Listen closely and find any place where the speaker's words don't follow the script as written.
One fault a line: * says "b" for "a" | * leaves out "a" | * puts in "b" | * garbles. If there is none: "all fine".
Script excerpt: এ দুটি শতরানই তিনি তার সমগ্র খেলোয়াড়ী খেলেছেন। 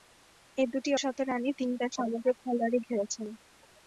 all fine